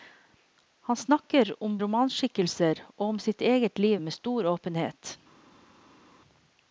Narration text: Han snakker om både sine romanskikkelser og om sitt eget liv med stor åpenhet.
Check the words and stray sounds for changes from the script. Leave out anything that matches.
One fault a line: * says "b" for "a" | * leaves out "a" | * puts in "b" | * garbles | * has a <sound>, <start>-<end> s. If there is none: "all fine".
* leaves out "både sine"